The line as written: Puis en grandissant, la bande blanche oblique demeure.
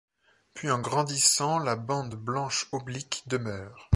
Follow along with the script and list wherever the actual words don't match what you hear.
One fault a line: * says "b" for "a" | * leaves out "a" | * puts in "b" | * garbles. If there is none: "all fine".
all fine